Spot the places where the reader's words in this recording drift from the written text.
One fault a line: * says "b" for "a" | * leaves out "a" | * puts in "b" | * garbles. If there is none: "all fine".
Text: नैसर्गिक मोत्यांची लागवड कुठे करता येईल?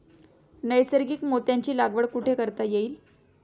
all fine